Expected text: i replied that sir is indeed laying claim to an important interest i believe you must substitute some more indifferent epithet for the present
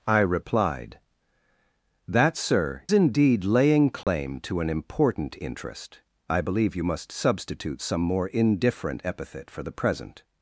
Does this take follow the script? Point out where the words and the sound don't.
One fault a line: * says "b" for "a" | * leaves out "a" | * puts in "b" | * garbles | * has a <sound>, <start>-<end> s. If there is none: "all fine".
* leaves out "is"
* has a dropout, 4.0-4.1 s